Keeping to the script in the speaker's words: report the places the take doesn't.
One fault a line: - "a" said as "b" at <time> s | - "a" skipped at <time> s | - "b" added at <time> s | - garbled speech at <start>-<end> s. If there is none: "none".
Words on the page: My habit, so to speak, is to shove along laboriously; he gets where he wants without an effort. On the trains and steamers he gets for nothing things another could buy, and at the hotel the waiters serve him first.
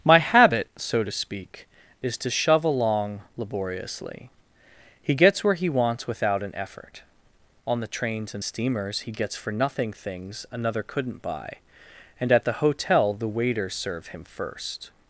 - "could" said as "couldn't" at 10.8 s